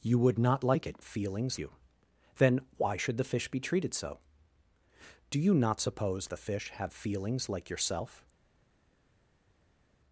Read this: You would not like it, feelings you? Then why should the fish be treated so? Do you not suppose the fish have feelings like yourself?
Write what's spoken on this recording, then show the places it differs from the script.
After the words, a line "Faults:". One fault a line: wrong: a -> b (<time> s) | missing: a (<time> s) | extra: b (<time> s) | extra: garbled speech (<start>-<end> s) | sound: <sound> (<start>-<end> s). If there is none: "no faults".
You would not like it, feelings you? Then why should the fish be treated so? Do you not suppose the fish have feelings like yourself?
Faults:
no faults